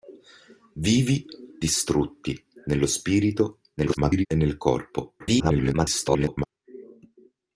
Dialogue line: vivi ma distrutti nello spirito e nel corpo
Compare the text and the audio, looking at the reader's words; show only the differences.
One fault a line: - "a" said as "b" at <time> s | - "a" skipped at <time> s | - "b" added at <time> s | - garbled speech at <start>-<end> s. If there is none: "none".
- "ma" skipped at 1.3 s
- garbled speech at 3.8-4.3 s
- garbled speech at 5.2-6.5 s